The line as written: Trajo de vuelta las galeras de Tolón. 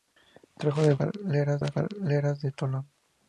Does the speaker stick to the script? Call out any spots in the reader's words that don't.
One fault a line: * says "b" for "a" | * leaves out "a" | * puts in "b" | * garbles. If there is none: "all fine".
* says "galeras" for "vuelta"